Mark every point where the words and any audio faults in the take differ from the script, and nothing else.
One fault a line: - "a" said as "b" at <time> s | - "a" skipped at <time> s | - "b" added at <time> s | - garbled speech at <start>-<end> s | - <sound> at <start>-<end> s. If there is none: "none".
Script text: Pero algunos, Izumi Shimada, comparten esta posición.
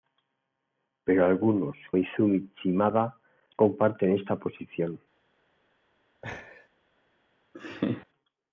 - laugh at 6.2-6.7 s
- laugh at 7.5-8.1 s